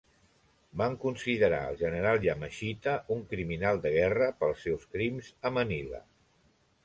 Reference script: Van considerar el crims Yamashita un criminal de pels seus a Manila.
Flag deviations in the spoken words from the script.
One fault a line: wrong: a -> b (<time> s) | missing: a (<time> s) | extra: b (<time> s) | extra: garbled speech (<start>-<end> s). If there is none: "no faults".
wrong: crims -> general (1.8 s)
extra: guerra (4.0 s)
extra: crims (4.9 s)